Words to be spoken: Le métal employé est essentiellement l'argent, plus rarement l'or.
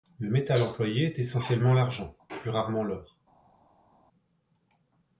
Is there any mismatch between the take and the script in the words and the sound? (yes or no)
no